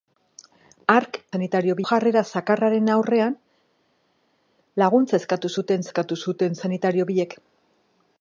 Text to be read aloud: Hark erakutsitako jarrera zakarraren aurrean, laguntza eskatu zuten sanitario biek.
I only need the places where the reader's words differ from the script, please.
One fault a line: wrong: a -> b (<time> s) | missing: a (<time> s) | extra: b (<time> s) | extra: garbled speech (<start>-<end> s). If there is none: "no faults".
wrong: erakutsitako -> sanitario (1.3 s)
extra: eskatu zuten (5.9 s)